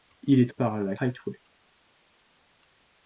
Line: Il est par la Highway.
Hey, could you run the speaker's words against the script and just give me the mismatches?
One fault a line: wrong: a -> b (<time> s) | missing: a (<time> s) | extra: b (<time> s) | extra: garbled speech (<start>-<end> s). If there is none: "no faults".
no faults